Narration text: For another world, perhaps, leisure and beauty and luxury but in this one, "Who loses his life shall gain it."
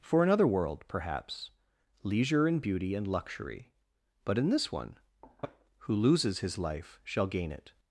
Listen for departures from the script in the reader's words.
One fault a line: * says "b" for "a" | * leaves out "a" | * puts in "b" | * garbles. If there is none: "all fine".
all fine